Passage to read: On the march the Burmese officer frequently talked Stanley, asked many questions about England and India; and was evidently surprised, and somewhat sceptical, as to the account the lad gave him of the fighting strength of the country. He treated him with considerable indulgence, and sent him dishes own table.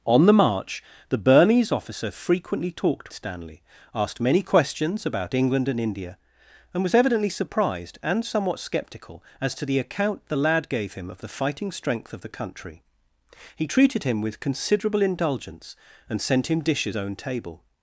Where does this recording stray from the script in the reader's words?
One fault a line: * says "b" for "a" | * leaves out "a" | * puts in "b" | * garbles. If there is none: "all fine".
all fine